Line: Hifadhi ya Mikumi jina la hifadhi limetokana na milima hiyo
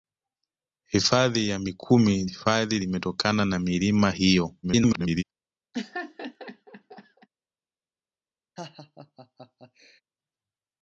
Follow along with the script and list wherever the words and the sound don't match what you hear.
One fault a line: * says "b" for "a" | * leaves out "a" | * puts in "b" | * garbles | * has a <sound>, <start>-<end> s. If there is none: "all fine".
* leaves out "jina la"
* garbles
* has a laugh, 5.7-7.3 s
* has a laugh, 8.6-10.0 s